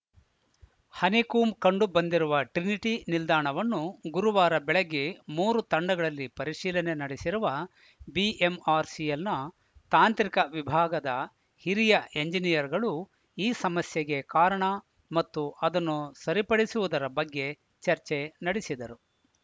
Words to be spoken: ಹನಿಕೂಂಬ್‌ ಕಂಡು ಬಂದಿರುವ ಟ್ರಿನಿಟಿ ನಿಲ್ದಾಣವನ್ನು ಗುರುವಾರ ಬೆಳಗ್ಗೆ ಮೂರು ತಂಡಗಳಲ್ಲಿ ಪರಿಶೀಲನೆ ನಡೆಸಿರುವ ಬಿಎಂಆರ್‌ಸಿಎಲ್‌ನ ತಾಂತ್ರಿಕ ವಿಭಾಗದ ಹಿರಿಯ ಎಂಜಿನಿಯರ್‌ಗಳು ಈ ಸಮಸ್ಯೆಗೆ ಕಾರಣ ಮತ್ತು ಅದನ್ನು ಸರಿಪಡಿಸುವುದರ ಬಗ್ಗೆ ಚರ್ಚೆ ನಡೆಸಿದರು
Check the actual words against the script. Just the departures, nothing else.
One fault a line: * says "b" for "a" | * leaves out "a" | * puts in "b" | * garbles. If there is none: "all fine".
all fine